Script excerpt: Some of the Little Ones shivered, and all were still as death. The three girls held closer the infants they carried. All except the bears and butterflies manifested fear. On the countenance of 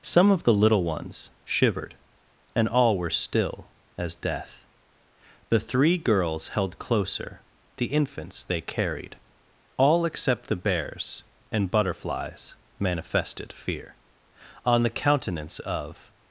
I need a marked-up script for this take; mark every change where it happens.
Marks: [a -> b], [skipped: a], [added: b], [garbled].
Some of the Little Ones shivered, and all were still as death. The three girls held closer the infants they carried. All except the bears and butterflies manifested fear. On the countenance of